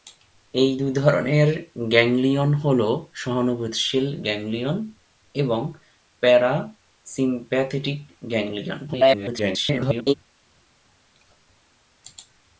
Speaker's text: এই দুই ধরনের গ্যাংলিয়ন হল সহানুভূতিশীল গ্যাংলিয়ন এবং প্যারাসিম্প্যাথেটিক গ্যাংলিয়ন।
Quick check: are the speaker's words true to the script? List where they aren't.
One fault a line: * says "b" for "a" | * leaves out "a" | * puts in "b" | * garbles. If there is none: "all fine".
* garbles